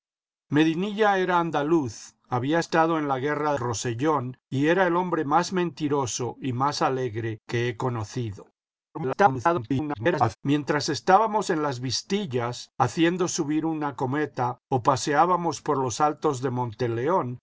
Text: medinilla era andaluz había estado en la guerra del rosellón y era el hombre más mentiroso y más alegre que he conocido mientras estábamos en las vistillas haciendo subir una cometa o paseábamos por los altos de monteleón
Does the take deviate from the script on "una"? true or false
false